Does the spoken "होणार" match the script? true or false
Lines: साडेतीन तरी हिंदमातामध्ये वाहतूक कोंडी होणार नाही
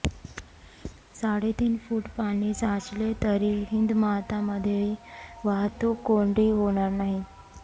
true